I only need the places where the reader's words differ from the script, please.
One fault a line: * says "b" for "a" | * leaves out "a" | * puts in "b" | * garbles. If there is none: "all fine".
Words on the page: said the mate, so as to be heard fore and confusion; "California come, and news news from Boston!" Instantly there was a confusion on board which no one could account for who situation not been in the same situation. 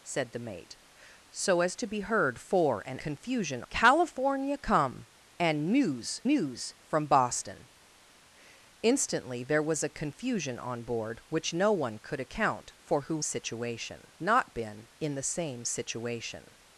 all fine